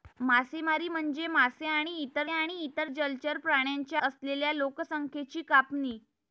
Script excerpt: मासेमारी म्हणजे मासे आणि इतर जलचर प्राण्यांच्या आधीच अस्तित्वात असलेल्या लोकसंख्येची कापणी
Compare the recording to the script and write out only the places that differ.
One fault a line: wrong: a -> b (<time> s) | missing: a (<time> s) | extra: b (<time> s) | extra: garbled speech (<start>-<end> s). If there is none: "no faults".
extra: आणि इतर (2.3 s)
missing: आधीच अस्तित्वात (4.0 s)